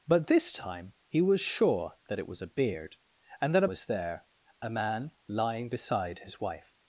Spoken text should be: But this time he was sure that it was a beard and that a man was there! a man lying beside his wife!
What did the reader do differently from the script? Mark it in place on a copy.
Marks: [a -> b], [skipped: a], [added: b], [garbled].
But this time he was sure that it was a beard and that a [skipped: man] was there! a man lying beside his wife!